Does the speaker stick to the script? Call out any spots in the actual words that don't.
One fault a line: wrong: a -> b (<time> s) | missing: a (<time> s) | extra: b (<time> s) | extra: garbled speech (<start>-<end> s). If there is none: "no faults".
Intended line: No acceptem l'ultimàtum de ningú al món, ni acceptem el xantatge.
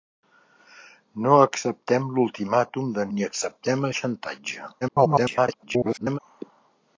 missing: ningú al món (3.0 s)
extra: garbled speech (4.8-6.2 s)